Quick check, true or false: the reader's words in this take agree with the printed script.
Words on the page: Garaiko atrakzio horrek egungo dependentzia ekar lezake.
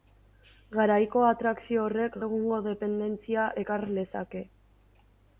true